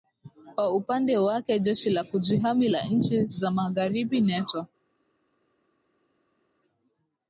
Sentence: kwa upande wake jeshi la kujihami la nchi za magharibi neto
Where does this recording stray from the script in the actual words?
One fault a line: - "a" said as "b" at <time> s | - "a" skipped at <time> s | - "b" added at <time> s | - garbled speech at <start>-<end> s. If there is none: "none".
none